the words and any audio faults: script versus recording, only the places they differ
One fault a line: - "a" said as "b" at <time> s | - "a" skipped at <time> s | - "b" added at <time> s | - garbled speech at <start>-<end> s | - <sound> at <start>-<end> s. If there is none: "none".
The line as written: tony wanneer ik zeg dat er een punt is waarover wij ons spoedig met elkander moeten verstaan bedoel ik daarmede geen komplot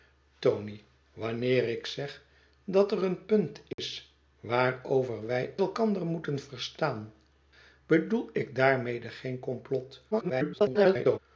- dropout at 3.7-3.8 s
- "ons spoedig met" skipped at 5.5 s
- garbled speech at 10.1-11.2 s